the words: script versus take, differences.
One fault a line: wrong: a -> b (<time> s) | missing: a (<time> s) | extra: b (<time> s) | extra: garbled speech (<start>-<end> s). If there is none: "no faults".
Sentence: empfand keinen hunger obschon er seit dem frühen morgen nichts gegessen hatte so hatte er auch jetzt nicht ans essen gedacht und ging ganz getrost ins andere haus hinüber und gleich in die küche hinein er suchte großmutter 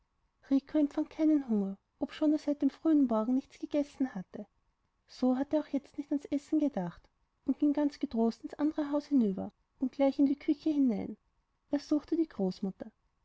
extra: die (12.2 s)